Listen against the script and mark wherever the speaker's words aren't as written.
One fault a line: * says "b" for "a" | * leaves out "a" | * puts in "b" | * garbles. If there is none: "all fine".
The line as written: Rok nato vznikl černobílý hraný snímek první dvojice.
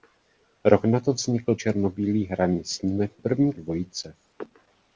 all fine